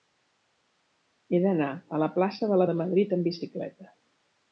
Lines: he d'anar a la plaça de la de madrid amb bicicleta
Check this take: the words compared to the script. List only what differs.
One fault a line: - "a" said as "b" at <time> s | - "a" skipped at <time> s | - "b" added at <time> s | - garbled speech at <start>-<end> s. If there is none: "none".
none